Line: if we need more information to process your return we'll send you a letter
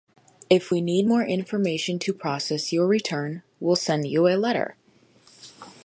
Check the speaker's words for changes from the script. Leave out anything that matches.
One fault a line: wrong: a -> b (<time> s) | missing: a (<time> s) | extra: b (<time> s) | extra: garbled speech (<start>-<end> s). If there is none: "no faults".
no faults